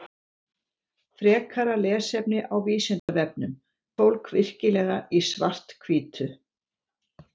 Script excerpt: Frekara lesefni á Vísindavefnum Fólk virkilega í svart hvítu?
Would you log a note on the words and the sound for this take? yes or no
yes